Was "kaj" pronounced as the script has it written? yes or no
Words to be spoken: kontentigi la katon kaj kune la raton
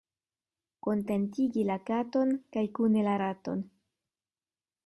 yes